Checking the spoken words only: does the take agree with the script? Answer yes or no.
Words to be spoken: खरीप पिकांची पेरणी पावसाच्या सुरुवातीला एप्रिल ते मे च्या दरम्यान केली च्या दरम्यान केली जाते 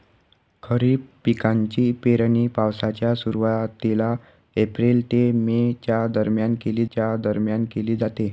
yes